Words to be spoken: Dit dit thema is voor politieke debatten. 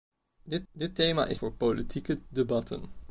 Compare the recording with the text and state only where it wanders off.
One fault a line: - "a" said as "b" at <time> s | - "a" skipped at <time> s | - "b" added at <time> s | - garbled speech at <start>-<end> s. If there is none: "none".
none